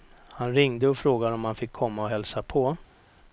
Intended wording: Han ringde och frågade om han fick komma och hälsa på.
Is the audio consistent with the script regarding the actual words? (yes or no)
yes